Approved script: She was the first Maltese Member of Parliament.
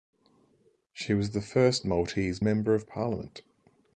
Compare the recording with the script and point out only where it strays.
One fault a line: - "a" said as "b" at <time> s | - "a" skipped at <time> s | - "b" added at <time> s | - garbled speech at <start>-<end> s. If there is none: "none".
none